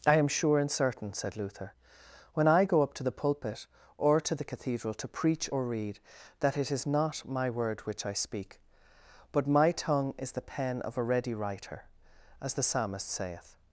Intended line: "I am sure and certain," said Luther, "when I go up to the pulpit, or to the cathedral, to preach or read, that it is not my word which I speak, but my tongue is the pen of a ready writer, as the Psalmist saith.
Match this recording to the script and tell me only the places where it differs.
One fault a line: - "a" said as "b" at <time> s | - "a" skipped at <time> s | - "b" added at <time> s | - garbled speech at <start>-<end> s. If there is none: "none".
none